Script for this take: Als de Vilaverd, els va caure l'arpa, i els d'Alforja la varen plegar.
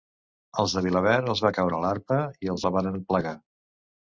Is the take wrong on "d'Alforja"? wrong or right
wrong